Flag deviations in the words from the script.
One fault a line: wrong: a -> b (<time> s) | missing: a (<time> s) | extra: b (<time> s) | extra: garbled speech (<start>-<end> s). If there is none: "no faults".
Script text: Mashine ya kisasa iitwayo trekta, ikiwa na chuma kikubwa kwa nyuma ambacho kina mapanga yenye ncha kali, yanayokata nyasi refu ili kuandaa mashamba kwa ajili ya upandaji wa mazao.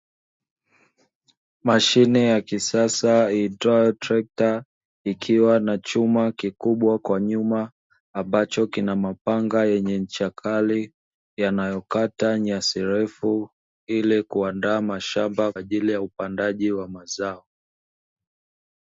missing: kwa (15.5 s)